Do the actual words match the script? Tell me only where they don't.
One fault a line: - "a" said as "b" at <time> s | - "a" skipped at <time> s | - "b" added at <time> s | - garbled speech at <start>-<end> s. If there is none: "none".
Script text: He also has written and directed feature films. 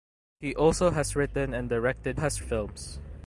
- "feature" said as "has" at 2.2 s